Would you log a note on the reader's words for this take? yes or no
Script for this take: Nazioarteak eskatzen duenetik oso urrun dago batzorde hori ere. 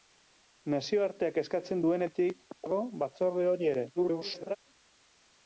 yes